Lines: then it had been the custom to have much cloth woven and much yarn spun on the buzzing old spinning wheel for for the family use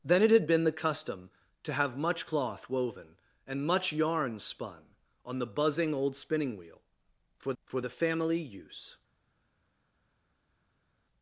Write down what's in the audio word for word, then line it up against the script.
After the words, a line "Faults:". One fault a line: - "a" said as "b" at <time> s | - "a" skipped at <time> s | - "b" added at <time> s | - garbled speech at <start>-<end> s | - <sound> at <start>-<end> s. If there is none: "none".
then it had been the custom to have much cloth woven and much yarn spun on the buzzing old spinning wheel for for the family use
Faults:
none